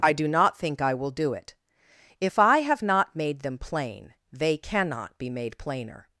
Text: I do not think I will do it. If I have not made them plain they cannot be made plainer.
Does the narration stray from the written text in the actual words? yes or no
no